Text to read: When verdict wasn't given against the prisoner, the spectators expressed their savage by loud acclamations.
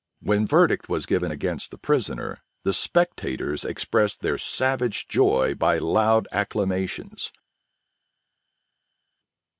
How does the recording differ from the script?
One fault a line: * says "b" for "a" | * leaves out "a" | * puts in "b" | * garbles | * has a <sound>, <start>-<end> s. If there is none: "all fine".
* says "was" for "wasn't"
* puts in "joy"